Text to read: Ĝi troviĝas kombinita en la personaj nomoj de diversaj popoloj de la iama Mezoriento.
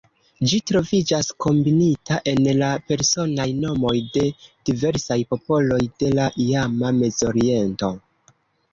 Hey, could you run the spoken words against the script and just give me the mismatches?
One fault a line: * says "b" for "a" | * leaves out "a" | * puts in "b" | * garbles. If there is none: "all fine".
all fine